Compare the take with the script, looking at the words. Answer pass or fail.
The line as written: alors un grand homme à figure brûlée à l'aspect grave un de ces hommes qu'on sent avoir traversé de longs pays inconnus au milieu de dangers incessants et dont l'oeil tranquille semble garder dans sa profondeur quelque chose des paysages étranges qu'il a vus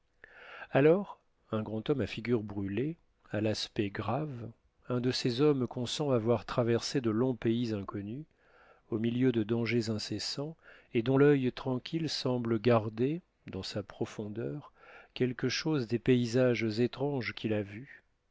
pass